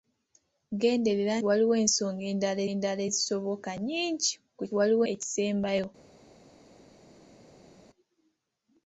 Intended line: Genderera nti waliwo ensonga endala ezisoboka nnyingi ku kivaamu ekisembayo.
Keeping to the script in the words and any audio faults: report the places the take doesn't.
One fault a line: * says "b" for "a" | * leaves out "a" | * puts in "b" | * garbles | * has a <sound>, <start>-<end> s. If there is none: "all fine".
* leaves out "nti"
* puts in "endala"
* says "waliwo" for "kivaamu"